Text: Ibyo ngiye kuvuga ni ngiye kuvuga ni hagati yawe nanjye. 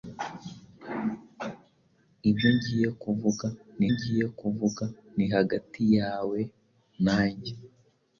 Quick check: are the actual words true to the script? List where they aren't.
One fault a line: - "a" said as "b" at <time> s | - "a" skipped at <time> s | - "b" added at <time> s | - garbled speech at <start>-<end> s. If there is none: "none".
none